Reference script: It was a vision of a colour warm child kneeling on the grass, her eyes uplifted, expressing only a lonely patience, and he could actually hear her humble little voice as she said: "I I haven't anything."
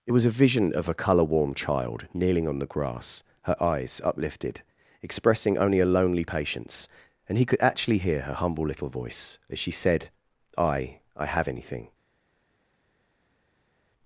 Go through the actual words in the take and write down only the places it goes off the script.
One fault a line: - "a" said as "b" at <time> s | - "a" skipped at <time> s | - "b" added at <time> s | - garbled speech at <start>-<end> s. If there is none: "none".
- "haven't" said as "have" at 11.2 s